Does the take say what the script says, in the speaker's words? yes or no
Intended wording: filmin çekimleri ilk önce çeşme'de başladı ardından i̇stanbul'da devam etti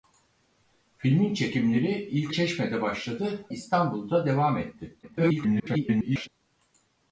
no